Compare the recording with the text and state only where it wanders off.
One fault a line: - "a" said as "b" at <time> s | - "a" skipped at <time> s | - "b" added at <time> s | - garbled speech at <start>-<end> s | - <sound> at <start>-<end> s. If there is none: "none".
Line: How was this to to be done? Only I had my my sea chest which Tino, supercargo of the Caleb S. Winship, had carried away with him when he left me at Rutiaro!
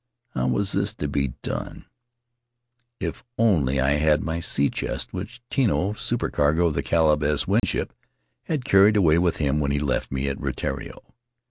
- "to" skipped at 1.1 s
- "If" added at 3.0 s
- "my" skipped at 4.4 s
- dropout at 7.6-7.6 s